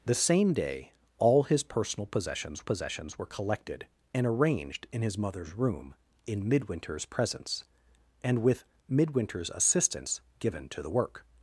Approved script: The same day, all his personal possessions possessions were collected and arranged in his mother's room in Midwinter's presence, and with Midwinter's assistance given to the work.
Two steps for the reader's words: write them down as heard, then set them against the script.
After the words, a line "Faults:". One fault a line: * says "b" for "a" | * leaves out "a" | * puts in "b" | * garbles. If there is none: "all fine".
The same day, all his personal possessions possessions were collected and arranged in his mother's room in Midwinter's presence, and with Midwinter's assistance given to the work.
Faults:
all fine